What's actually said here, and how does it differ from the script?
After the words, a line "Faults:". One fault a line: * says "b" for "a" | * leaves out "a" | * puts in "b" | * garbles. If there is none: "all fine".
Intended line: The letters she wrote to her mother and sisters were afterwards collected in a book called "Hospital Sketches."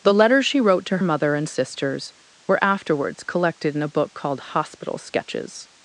The letters she wrote to mother and sisters were afterwards collected in a book called "Hospital Sketches."
Faults:
* leaves out "her"